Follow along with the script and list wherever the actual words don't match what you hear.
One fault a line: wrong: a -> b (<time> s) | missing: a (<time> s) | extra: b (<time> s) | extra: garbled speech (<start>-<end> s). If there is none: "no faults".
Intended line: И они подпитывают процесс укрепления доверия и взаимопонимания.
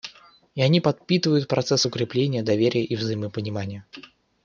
no faults